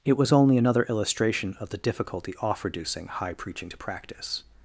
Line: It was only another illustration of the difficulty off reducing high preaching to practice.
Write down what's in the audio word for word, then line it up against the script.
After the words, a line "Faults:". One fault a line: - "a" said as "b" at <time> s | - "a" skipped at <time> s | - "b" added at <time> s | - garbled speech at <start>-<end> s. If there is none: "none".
It was only another illustration of the difficulty off reducing high preaching to practice.
Faults:
none